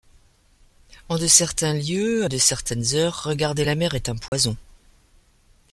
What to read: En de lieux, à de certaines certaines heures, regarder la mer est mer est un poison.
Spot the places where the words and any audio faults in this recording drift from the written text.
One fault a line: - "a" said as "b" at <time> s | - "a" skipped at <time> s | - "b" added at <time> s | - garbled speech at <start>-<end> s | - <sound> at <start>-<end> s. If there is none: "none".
- "certains" added at 1.3 s
- "certaines" skipped at 2.9 s
- "mer est" skipped at 4.1 s
- dropout at 4.3-4.3 s